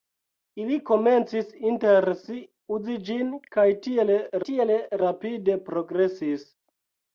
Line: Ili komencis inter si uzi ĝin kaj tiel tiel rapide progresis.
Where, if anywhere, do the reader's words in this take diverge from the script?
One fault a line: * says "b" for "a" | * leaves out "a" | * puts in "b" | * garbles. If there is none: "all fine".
all fine